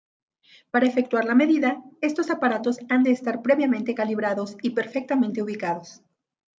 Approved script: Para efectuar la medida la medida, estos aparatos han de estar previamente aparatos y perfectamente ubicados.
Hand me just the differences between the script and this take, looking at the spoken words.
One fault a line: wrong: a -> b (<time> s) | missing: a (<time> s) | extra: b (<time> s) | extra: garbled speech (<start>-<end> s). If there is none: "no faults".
missing: la medida (1.8 s)
wrong: aparatos -> calibrados (3.9 s)